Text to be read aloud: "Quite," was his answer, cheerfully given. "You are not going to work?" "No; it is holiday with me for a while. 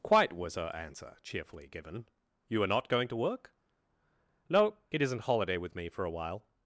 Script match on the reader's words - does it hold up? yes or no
no